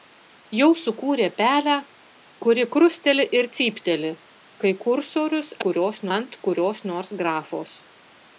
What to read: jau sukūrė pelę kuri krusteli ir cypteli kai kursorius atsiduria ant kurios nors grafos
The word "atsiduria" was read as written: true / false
false